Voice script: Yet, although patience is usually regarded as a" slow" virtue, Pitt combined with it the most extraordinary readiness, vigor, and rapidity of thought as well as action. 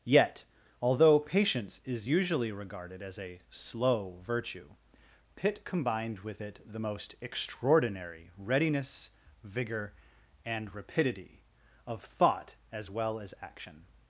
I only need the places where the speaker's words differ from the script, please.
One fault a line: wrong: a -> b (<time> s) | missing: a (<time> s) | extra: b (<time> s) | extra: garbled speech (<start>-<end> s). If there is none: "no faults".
no faults